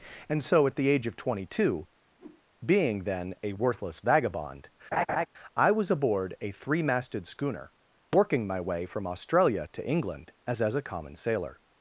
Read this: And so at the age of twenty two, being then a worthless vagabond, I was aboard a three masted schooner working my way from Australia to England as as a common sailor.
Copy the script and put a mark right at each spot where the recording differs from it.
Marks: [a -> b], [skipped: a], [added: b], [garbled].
And so at the age of twenty two, being then a worthless vagabond, I was aboard a three masted schooner working my way from Australia to England as as a common sailor.